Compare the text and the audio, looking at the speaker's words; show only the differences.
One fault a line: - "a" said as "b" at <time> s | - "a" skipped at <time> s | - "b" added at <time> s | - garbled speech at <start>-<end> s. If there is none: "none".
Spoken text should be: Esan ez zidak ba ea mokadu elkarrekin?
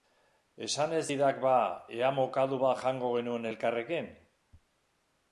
- "bat jango genuen" added at 2.6 s